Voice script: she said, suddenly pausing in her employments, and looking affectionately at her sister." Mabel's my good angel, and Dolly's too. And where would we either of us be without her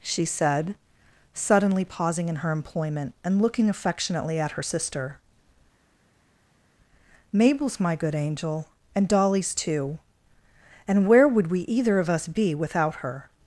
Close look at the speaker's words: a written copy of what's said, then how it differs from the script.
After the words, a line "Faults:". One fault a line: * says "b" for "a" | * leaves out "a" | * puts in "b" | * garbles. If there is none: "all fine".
she said, suddenly pausing in her employment, and looking affectionately at her sister." Mabel's my good angel, and Dolly's too. And where would we either of us be without her
Faults:
* says "employment" for "employments"